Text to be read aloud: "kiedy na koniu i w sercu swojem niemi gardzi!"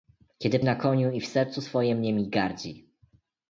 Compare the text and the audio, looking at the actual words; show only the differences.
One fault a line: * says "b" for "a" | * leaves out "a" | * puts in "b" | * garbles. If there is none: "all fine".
all fine